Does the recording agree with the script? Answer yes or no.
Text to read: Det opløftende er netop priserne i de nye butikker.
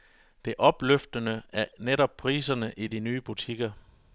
yes